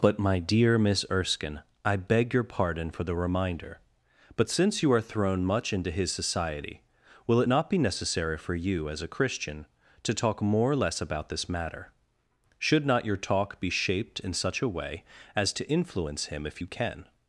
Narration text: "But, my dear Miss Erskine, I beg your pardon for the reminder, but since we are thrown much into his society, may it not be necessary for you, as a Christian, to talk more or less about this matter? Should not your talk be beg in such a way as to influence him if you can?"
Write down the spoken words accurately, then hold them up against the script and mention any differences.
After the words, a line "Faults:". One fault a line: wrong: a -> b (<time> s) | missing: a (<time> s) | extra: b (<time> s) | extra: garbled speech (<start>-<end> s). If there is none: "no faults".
"But, my dear Miss Erskine, I beg your pardon for the reminder, but since you are thrown much into his society, will it not be necessary for you, as a Christian, to talk more or less about this matter? Should not your talk be shaped in such a way as to influence him if you can?"
Faults:
wrong: we -> you (4.8 s)
wrong: may -> will (7.3 s)
wrong: beg -> shaped (13.7 s)